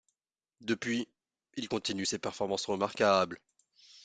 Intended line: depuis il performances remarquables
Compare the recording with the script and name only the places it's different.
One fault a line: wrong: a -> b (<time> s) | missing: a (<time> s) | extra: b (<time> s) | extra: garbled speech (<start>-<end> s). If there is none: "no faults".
extra: continue ses (1.7 s)